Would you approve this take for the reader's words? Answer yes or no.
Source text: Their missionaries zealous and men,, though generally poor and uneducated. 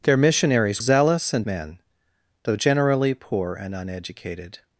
yes